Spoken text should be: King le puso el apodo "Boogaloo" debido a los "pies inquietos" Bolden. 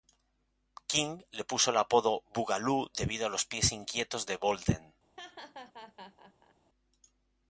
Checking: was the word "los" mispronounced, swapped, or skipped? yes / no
no